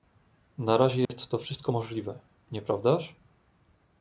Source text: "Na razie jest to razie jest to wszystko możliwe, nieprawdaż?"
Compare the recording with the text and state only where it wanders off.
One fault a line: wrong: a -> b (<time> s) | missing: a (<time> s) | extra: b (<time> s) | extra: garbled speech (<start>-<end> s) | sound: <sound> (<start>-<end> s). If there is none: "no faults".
sound: dropout (1.0-1.1 s)
missing: razie jest to (1.4 s)